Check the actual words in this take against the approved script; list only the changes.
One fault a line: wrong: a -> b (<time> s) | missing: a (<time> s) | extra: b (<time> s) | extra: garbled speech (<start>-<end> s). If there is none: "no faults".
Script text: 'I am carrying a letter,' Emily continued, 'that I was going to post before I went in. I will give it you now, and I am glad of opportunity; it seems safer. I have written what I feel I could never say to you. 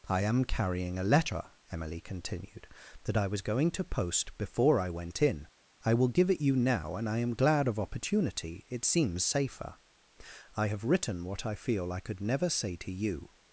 no faults